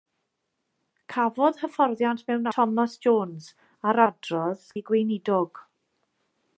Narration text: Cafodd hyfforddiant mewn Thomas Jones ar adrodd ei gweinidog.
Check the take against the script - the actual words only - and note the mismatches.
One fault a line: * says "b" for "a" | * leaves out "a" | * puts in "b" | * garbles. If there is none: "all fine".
all fine